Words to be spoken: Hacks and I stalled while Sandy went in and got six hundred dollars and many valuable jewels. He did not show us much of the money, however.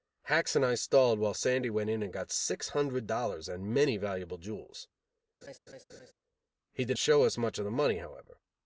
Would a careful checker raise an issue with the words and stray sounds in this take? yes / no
yes